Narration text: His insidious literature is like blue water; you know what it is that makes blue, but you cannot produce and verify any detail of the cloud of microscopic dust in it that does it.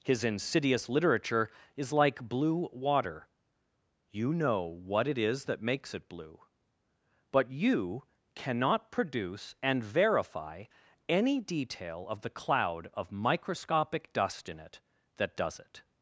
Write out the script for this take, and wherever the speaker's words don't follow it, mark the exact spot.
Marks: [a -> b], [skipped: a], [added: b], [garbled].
His insidious literature is like blue water; you know what it is that makes [added: it] blue, but you cannot produce and verify any detail of the cloud of microscopic dust in it that does it.